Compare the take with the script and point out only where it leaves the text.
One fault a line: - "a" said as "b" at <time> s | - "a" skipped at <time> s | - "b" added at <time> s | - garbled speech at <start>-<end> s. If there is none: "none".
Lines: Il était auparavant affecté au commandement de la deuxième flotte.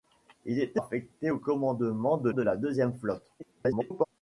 - "auparavant" skipped at 0.8 s
- "de" added at 2.3 s
- garbled speech at 3.4-4.0 s